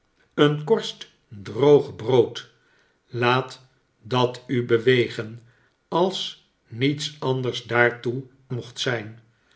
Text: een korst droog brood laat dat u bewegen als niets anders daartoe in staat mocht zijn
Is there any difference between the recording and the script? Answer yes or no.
yes